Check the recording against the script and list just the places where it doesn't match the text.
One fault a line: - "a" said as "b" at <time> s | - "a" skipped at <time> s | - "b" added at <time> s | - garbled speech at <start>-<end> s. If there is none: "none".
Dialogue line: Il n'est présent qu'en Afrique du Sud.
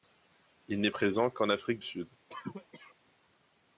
- "du" skipped at 1.8 s